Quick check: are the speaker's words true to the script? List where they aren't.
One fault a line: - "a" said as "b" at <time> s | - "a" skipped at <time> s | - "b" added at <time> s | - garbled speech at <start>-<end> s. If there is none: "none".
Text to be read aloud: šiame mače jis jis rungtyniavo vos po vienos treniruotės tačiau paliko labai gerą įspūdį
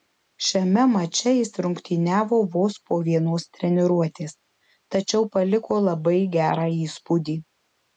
- "jis" skipped at 1.5 s